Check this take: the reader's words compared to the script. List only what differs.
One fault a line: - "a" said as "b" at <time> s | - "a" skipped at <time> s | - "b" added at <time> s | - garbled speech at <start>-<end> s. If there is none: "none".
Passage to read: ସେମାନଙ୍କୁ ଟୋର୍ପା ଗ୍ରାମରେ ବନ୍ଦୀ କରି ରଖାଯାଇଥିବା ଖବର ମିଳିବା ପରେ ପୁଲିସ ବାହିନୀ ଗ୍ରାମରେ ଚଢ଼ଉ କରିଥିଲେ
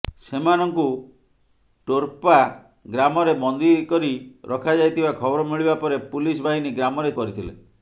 - "ଚଢ଼ଉ" skipped at 7.1 s